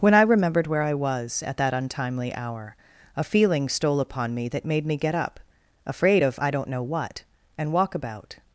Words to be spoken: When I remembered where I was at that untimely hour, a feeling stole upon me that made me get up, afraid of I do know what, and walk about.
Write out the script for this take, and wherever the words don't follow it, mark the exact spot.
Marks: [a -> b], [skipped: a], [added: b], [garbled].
When I remembered where I was at that untimely hour, a feeling stole upon me that made me get up, afraid of I [do -> don't] know what, and walk about.